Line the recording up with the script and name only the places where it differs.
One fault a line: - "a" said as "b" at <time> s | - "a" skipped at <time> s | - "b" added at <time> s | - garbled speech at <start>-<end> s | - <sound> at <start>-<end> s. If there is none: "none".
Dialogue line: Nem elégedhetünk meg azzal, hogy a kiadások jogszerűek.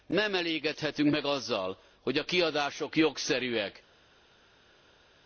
none